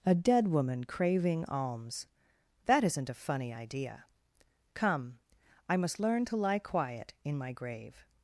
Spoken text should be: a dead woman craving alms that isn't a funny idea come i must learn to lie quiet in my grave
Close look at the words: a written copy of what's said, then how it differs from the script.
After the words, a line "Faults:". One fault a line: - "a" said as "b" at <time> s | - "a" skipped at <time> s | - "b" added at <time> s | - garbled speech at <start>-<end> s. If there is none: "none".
a dead woman craving alms that isn't a funny idea come i must learn to lie quiet in my grave
Faults:
none